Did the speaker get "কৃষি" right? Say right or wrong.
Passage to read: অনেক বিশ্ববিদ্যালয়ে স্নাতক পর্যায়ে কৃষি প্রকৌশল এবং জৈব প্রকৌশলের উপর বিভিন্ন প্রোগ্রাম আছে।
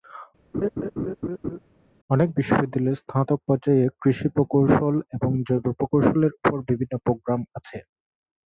right